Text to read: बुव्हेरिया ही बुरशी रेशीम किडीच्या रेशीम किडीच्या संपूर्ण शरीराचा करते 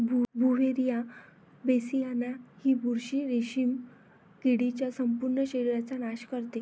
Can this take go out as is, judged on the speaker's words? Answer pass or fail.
fail